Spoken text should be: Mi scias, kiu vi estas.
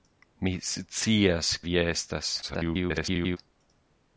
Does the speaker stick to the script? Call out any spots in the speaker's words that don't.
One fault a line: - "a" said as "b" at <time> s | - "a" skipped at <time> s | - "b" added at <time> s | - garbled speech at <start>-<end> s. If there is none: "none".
- "kiu" skipped at 1.5 s
- garbled speech at 2.4-3.4 s